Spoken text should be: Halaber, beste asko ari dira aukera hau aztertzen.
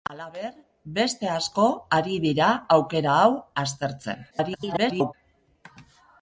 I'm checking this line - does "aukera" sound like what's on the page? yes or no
yes